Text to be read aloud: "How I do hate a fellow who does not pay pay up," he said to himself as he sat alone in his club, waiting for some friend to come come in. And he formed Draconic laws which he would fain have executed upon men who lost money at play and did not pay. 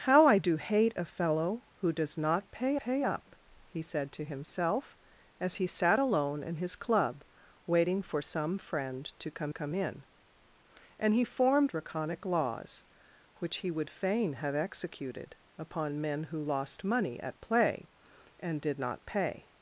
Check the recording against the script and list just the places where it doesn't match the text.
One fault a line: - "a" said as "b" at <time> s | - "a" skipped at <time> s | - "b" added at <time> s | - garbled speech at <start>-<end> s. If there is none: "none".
none